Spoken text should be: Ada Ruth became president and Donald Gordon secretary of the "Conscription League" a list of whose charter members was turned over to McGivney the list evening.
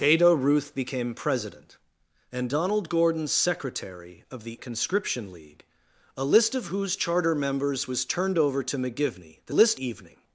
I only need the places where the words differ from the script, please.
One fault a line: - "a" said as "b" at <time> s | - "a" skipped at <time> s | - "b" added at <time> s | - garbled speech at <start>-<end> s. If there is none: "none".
none